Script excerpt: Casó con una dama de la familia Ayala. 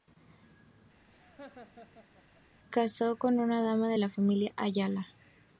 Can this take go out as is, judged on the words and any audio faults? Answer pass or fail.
fail